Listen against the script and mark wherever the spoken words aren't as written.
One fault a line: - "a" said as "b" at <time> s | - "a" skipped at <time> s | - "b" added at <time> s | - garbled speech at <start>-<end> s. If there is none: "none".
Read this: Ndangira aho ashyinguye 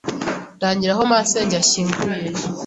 - "masenge" added at 1.1 s